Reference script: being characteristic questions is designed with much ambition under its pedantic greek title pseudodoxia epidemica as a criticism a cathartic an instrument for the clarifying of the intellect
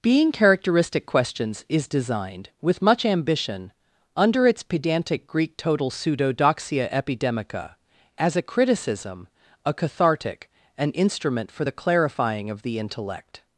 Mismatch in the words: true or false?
true